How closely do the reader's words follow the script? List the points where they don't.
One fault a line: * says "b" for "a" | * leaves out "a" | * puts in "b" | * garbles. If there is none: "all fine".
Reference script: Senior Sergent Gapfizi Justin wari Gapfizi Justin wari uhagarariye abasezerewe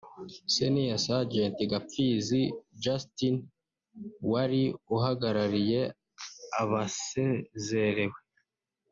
* leaves out "Gapfizi Justin wari"